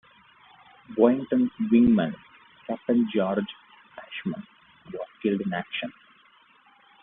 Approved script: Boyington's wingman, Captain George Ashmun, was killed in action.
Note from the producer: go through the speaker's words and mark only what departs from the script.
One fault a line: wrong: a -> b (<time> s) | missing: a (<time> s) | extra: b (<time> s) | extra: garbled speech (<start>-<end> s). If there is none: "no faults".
no faults